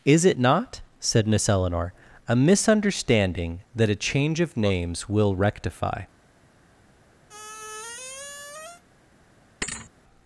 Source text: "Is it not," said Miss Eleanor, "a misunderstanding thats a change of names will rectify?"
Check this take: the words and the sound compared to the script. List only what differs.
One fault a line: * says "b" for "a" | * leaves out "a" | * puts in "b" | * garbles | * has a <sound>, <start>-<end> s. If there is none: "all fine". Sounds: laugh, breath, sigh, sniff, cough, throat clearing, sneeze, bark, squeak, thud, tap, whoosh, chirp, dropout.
* says "that" for "thats"
* has a squeak, 7.3-8.8 s
* has a thud, 9.6-9.9 s